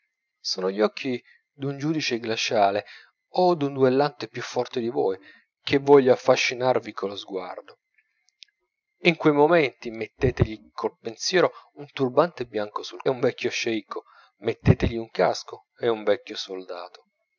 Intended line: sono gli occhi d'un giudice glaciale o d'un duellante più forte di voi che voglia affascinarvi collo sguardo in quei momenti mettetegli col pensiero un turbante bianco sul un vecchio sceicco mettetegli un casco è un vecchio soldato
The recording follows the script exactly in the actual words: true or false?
true